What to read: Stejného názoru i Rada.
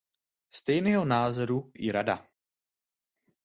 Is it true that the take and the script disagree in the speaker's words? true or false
false